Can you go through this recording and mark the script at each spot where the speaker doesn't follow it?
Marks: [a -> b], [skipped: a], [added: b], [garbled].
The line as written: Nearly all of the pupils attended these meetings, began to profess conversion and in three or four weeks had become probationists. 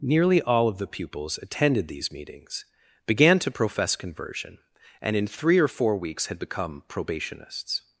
Nearly all of the pupils attended these meetings, began to profess conversion and in three or four weeks had become probationists.